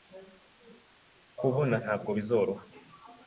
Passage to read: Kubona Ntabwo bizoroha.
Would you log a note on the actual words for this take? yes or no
no